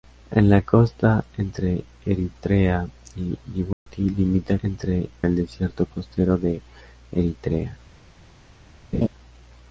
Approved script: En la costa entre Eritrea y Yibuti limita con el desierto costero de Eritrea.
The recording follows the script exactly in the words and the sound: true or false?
false